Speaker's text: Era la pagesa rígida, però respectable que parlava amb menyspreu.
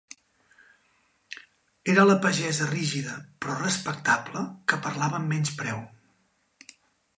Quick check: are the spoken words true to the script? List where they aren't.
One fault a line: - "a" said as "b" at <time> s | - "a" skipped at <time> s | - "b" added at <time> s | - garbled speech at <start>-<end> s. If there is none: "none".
none